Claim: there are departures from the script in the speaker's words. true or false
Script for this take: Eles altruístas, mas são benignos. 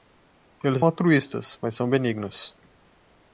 false